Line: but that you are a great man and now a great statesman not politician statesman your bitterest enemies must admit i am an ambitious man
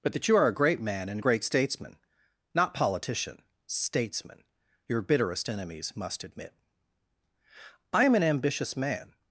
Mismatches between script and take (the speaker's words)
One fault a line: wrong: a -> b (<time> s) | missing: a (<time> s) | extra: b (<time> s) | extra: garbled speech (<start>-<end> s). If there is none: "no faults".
missing: now (1.2 s)